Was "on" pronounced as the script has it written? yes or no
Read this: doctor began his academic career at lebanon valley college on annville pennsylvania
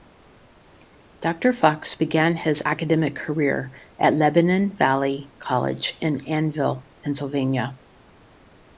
no